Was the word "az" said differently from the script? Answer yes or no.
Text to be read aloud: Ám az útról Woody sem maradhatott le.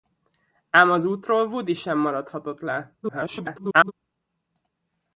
no